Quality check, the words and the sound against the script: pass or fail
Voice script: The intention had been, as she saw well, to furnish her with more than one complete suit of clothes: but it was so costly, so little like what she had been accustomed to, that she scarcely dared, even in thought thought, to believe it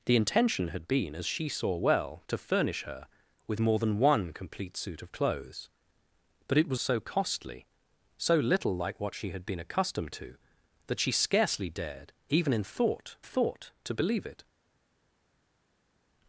pass